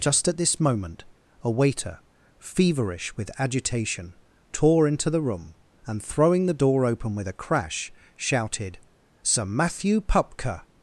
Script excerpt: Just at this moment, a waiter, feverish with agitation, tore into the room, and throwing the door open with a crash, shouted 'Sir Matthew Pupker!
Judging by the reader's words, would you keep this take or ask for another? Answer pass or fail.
pass